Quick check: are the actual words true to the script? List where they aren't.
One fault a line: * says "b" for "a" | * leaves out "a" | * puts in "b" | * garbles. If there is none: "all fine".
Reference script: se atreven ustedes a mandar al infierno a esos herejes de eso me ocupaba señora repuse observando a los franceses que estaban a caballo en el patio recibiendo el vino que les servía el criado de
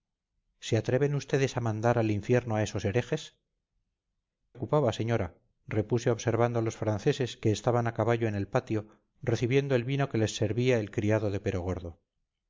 * leaves out "de eso me"